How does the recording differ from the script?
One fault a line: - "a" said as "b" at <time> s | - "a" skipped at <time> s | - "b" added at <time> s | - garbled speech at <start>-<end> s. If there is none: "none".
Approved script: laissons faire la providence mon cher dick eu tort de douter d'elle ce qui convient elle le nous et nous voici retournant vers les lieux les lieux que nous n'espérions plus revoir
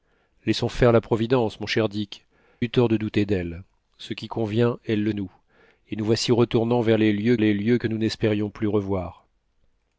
none